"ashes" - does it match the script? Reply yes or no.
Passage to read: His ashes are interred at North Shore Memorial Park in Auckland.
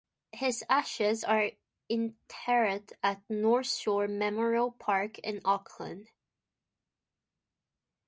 yes